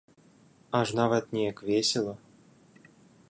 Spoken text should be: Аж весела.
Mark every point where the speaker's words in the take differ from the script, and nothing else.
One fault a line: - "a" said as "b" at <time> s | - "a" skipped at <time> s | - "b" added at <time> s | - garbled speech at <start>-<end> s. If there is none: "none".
- "нават неяк" added at 1.0 s